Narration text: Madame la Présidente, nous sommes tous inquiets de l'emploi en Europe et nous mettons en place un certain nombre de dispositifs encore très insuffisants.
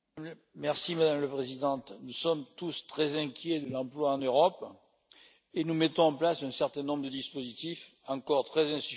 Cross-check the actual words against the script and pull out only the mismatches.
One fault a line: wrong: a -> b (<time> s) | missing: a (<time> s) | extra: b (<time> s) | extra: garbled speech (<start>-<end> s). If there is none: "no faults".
extra: très (2.9 s)